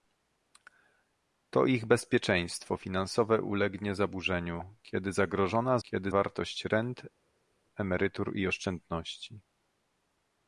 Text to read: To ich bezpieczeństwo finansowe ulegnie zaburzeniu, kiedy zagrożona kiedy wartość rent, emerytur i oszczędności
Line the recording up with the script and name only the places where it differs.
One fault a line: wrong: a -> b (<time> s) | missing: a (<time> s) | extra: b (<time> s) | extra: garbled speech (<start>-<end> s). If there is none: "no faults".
no faults